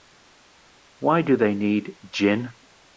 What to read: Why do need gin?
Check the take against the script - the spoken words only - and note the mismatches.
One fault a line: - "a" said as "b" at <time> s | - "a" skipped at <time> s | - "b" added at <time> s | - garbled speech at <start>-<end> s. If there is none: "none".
- "they" added at 1.4 s